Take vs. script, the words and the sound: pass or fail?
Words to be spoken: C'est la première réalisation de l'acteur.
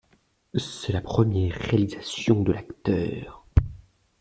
pass